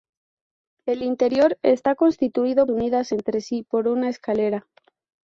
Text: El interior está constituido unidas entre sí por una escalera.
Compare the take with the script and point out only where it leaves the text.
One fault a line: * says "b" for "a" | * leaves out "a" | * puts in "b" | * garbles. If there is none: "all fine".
all fine